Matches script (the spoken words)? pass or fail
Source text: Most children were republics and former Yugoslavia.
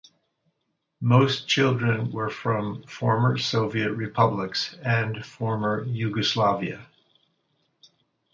fail